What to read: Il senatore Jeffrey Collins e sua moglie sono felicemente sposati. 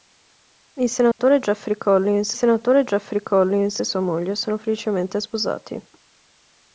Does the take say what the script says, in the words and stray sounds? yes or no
no